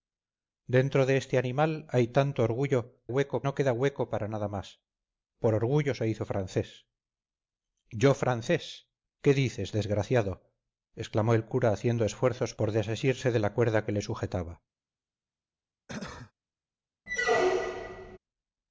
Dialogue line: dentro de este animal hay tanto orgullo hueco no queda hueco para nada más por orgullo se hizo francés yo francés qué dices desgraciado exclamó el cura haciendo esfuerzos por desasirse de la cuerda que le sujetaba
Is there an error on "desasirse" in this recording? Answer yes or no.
no